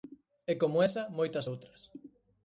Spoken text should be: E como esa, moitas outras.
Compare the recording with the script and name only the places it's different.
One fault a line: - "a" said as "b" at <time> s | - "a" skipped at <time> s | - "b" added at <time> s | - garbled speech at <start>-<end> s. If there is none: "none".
none